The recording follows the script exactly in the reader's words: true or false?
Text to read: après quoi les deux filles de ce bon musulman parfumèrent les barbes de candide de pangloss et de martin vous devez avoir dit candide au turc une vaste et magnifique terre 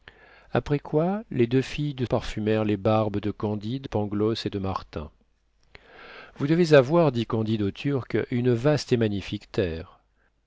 false